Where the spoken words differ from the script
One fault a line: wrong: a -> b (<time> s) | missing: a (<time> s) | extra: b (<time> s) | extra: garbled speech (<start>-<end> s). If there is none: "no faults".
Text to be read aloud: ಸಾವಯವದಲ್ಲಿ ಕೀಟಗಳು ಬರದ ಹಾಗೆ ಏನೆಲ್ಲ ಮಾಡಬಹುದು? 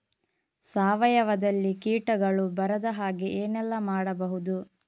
no faults